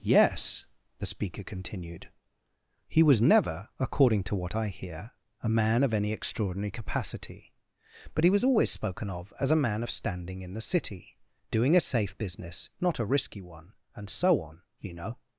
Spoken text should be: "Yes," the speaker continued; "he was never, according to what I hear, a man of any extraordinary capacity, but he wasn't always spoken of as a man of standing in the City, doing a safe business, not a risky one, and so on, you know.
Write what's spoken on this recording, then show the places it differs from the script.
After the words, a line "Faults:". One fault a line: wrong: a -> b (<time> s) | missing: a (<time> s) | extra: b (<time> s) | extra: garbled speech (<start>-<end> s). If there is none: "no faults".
"Yes," the speaker continued; "he was never, according to what I hear, a man of any extraordinary capacity, but he was always spoken of as a man of standing in the City, doing a safe business, not a risky one, and so on, you know.
Faults:
wrong: wasn't -> was (8.3 s)